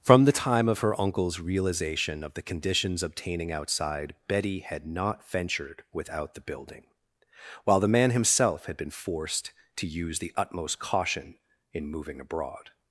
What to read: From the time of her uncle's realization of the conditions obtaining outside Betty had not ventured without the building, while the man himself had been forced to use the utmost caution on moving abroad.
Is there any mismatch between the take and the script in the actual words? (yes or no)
yes